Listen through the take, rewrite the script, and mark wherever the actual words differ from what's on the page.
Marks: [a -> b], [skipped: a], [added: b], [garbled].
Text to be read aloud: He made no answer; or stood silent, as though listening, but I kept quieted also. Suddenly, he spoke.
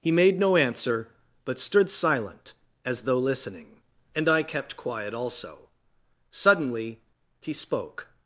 He made no answer; [or -> but] stood silent, as though listening, [but -> and] I kept [quieted -> quiet] also. Suddenly, he spoke.